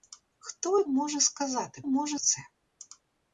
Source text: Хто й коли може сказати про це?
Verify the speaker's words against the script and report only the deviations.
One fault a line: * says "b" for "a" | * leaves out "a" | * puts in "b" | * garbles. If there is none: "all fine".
* leaves out "коли"
* says "може" for "про"